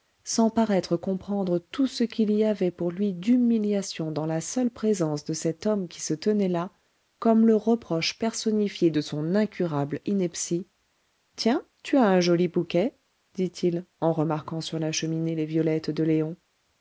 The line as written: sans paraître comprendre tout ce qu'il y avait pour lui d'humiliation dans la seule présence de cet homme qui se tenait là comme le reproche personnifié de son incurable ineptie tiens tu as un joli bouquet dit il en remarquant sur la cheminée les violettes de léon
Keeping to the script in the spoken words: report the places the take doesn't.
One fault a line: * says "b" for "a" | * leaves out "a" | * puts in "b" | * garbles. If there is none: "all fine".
all fine